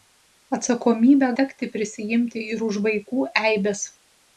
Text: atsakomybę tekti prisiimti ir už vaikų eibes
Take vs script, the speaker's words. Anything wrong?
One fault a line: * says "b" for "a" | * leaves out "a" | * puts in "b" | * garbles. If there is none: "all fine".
all fine